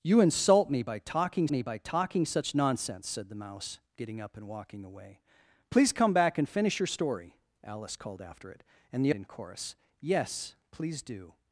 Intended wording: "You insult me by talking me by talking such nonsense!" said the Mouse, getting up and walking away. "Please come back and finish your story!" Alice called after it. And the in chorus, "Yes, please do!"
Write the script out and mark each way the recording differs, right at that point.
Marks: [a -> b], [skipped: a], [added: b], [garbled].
"You insult me by talking me by talking such nonsense!" said the Mouse, getting up and walking away. "Please come back and finish your story!" Alice called after it. And the in chorus, "Yes, please do!"